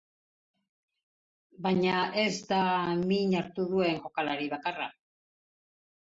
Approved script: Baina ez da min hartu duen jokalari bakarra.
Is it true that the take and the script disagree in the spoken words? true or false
false